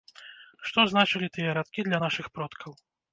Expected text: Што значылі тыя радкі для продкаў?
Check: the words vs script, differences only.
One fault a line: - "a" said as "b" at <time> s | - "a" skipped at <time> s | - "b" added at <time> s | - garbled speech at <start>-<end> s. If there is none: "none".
- "нашых" added at 2.0 s